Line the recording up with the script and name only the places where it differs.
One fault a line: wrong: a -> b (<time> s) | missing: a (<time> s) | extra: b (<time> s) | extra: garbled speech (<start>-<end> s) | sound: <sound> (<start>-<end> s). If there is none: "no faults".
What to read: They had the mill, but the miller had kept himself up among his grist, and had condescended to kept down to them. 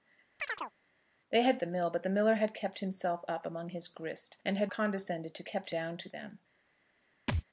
sound: chirp (0.4-0.7 s)
sound: thud (7.3-7.4 s)